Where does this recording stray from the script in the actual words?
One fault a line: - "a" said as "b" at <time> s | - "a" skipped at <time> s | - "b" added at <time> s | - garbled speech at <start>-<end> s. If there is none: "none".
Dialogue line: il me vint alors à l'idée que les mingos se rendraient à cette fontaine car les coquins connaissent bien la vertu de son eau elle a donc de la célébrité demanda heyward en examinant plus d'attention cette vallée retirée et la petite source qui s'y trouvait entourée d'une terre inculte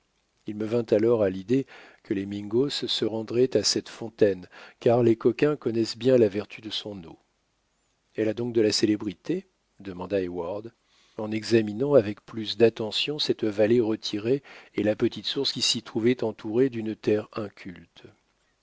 - "avec" added at 11.9 s